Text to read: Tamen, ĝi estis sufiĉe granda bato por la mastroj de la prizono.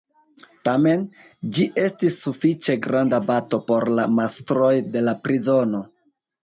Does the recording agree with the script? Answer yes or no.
yes